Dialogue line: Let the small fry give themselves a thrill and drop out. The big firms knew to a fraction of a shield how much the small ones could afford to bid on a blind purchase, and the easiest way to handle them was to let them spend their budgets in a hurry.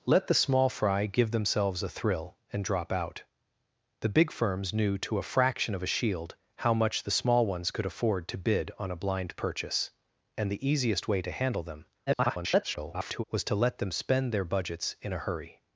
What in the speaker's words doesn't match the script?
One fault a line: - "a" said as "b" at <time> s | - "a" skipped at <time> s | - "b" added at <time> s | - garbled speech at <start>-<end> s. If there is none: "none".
- garbled speech at 12.1-13.2 s